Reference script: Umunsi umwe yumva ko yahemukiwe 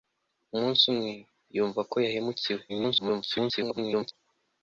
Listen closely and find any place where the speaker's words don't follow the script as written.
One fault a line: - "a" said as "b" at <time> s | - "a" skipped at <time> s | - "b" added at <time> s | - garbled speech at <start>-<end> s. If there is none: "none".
- garbled speech at 2.7-4.1 s